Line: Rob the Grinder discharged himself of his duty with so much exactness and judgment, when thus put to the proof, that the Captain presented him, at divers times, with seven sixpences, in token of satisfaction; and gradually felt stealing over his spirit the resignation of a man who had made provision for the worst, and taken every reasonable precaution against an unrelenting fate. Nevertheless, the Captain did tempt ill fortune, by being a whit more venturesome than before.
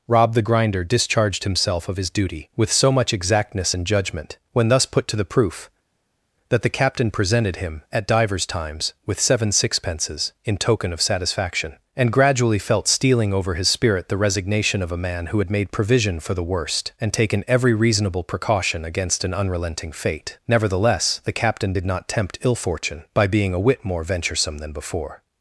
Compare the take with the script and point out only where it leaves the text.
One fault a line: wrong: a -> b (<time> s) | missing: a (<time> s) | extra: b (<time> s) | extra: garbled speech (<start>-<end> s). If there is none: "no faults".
extra: not (21.9 s)